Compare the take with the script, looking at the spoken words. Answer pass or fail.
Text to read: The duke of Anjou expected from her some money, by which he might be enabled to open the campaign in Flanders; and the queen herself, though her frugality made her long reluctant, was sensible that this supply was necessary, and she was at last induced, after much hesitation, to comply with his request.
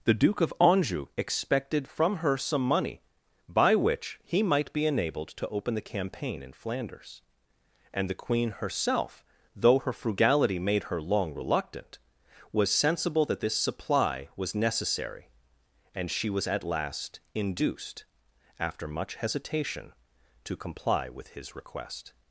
pass